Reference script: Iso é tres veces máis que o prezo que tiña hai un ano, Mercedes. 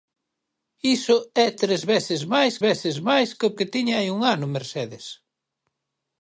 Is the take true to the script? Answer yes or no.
no